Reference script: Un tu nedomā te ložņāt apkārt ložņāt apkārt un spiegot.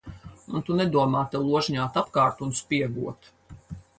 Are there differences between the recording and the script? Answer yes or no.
yes